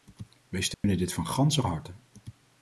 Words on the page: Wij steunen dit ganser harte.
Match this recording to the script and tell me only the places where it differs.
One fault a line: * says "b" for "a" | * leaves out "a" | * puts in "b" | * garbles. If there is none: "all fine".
* puts in "van"